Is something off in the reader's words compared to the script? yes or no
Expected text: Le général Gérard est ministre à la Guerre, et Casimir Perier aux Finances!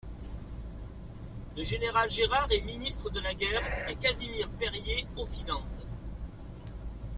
yes